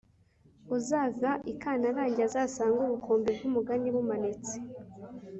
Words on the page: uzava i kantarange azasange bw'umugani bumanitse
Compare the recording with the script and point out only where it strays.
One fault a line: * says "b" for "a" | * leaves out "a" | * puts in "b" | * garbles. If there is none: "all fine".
* puts in "ubukombe"